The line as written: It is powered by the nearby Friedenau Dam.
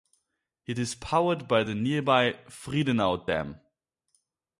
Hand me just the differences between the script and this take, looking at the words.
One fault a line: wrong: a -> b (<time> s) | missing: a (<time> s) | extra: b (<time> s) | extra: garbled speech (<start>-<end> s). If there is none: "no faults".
no faults